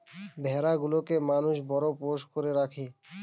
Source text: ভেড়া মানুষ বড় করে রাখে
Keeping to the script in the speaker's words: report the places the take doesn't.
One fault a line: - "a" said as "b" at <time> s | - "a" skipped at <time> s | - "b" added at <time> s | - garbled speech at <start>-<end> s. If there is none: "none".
- "গুলোকে" added at 0.8 s
- "পোষ্য" added at 2.0 s